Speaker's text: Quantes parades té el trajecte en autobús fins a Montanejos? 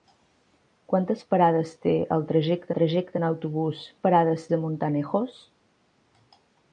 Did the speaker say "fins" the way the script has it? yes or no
no